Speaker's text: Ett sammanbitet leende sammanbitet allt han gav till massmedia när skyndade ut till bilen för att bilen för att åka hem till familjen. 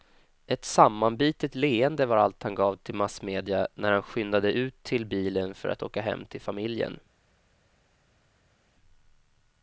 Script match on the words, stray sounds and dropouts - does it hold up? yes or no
no